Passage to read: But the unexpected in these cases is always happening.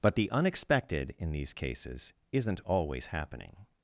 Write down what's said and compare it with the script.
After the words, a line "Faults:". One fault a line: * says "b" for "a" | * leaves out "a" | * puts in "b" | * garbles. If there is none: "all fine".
But the unexpected in these cases isn't always happening.
Faults:
* says "isn't" for "is"